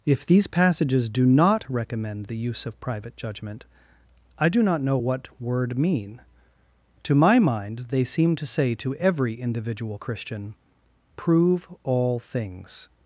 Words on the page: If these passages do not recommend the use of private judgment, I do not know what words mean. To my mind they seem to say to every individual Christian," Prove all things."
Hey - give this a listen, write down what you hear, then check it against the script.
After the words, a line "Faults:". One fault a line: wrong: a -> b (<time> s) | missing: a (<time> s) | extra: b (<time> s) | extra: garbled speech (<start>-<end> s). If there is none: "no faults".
If these passages do not recommend the use of private judgment, I do not know what word mean. To my mind they seem to say to every individual Christian," Prove all things."
Faults:
wrong: words -> word (5.4 s)